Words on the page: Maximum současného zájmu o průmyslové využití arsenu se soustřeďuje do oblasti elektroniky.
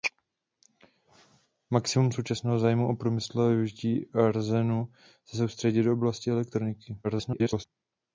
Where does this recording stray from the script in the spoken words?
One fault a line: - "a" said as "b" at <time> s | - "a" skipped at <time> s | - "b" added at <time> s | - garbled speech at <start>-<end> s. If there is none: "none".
- garbled speech at 7.0-7.7 s